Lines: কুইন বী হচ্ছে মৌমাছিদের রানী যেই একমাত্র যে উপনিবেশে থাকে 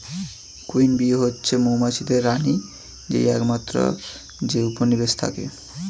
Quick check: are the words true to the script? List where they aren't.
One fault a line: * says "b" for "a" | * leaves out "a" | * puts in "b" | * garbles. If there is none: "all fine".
all fine